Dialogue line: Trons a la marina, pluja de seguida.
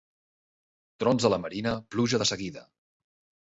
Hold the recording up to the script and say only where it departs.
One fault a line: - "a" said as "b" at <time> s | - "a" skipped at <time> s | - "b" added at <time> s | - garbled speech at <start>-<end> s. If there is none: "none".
none